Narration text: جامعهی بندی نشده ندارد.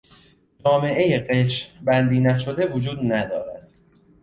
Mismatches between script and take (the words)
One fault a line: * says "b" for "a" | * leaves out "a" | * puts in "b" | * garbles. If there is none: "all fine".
* puts in "قشر"
* puts in "وجود"